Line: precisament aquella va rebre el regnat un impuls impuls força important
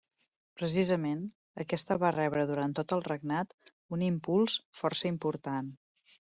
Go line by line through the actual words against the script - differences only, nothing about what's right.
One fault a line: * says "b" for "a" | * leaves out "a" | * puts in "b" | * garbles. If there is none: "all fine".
* says "aquesta" for "aquella"
* puts in "durant tot"
* leaves out "impuls"